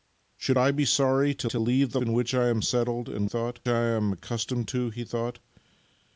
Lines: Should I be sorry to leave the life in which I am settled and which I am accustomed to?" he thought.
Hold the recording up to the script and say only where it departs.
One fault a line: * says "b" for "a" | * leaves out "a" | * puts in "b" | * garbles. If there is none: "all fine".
* puts in "to"
* leaves out "life"
* says "thought" for "which"